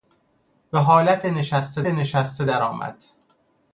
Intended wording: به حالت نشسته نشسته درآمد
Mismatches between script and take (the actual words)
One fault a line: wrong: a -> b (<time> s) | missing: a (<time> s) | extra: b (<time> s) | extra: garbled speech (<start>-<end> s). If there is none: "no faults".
no faults